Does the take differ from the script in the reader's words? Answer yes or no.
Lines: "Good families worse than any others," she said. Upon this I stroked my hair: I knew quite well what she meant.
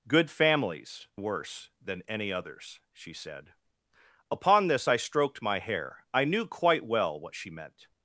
no